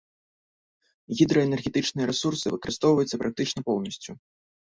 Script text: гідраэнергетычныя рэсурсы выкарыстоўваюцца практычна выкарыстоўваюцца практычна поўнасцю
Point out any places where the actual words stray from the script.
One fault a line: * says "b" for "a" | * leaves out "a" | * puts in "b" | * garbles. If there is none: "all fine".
* leaves out "выкарыстоўваюцца практычна"